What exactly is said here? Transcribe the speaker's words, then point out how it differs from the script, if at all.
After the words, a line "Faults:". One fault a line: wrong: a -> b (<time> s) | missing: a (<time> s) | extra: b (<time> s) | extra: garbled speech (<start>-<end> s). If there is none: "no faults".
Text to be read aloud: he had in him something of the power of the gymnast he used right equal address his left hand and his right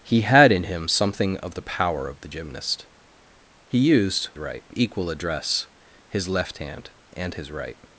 he had in him something of the power of the gymnast he used right equal address his left hand and his right
Faults:
no faults